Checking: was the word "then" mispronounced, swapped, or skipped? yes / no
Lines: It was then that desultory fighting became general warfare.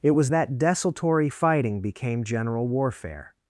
yes